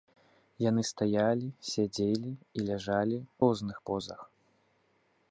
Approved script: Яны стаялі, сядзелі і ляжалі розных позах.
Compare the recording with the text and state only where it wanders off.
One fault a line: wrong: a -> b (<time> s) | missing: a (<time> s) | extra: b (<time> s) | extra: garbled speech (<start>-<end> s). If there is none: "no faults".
no faults